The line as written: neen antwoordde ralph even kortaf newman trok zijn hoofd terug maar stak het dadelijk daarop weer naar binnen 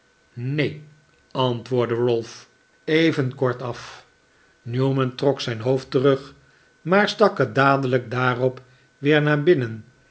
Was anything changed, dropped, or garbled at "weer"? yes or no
no